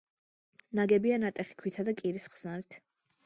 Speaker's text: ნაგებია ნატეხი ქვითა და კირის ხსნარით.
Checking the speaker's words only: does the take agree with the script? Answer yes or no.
yes